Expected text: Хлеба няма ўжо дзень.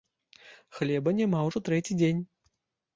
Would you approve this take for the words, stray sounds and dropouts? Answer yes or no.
no